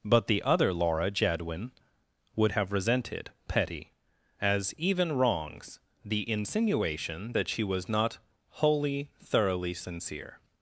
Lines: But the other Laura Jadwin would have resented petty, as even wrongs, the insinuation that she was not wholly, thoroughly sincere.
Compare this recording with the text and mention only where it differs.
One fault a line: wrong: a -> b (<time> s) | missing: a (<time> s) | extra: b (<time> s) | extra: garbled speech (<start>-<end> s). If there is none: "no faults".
no faults